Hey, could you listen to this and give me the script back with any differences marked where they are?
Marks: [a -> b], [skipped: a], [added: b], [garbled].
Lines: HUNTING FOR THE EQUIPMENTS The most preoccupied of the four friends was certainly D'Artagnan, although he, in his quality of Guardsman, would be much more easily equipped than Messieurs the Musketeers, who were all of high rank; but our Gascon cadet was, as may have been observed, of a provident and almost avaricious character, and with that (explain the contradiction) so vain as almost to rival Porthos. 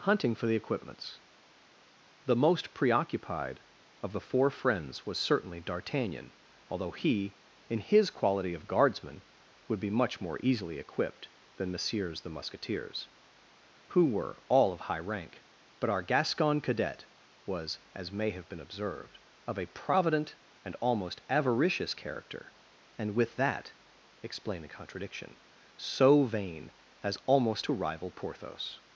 HUNTING FOR THE EQUIPMENTS The most preoccupied of the four friends was certainly D'Artagnan, although he, in his quality of Guardsman, would be much more easily equipped than Messieurs the Musketeers, who were all of high rank; but our Gascon cadet was, as may have been observed, of a provident and almost avaricious character, and with that (explain [the -> a] contradiction) so vain as almost to rival Porthos.